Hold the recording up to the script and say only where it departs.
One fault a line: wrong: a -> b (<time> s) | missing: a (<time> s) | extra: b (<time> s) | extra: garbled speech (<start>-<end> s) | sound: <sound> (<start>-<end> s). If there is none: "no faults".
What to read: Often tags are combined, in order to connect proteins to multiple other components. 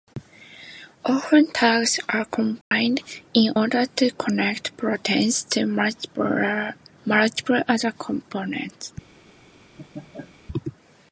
sound: dropout (2.6-2.7 s)
sound: laugh (9.8-10.4 s)